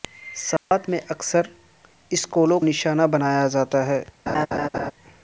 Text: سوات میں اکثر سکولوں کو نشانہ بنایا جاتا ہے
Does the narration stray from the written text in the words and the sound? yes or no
yes